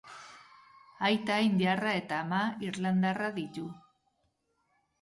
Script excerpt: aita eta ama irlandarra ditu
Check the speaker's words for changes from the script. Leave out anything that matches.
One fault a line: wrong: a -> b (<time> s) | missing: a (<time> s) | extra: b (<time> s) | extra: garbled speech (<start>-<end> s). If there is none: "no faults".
extra: indiarra (1.5 s)